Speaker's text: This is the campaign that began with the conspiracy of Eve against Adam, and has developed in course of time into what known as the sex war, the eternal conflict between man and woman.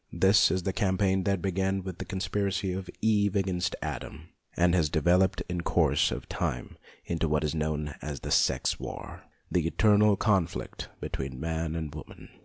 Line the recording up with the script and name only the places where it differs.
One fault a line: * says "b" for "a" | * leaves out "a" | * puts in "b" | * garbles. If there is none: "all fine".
* puts in "is"